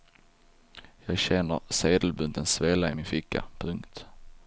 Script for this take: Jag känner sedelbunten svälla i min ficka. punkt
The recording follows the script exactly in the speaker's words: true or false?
true